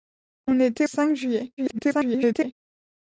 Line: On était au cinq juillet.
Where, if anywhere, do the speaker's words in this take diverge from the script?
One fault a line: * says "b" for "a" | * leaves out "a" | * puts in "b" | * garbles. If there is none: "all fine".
* leaves out "au"
* garbles